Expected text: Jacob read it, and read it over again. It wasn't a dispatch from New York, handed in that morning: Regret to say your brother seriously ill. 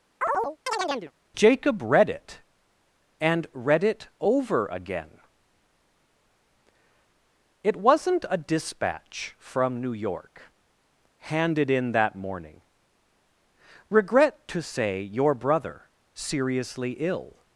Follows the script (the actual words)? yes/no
yes